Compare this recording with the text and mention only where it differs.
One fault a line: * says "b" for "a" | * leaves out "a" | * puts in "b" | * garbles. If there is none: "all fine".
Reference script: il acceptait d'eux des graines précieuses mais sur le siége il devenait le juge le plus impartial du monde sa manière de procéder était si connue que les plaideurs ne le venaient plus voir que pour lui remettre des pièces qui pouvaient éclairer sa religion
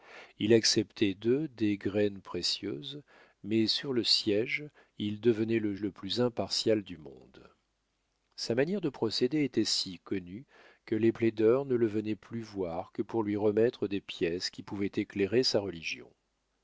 * leaves out "juge"